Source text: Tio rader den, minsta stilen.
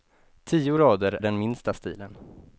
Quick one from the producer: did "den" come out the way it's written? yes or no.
yes